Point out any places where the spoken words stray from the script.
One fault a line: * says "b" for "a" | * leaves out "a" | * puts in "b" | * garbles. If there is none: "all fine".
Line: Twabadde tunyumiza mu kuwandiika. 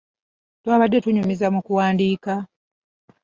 all fine